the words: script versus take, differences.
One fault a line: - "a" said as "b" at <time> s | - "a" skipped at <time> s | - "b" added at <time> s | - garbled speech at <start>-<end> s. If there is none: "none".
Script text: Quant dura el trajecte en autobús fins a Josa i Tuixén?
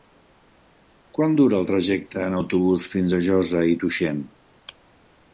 none